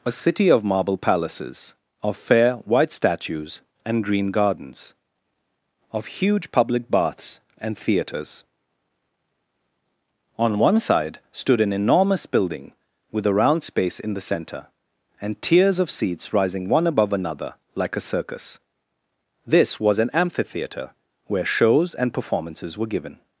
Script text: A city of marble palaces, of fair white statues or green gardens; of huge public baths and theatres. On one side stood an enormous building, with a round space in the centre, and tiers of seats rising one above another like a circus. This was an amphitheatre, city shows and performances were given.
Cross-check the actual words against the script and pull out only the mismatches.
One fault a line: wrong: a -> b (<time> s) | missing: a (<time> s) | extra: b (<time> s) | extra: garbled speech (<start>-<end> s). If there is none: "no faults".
wrong: or -> and (3.9 s)
wrong: city -> where (21.3 s)